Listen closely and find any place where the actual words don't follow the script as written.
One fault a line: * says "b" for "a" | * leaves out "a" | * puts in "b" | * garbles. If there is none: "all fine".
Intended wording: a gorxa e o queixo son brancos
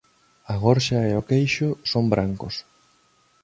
all fine